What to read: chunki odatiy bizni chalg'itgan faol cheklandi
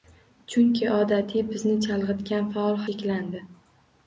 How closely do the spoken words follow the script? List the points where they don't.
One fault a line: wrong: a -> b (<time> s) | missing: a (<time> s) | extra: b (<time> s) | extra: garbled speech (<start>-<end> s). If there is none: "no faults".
no faults